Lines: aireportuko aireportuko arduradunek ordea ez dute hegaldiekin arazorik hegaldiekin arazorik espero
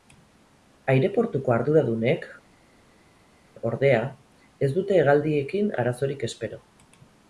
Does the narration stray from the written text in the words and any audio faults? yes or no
yes